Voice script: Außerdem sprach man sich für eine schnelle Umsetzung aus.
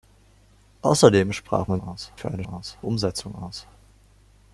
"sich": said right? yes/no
no